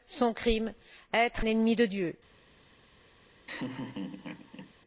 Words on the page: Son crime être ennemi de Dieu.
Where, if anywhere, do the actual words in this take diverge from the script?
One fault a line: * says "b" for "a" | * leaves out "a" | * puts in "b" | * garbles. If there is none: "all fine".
all fine